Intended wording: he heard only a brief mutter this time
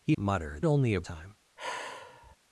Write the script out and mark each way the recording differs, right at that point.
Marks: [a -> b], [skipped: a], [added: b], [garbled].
he [heard -> mutter] only a [skipped: brief mutter this] time